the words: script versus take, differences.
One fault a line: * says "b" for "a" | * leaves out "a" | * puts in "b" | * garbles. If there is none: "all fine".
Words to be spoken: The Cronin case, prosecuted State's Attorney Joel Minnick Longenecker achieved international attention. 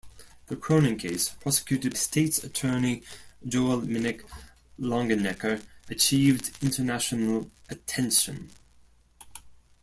all fine